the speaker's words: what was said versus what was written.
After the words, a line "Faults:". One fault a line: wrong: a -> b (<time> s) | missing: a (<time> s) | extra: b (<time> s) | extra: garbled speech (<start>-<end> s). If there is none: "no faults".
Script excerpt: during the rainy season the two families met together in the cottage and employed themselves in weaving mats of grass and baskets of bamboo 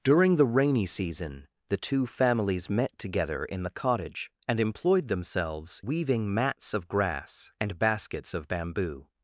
during the rainy season the two families met together in the cottage and employed themselves weaving mats of grass and baskets of bamboo
Faults:
missing: in (5.8 s)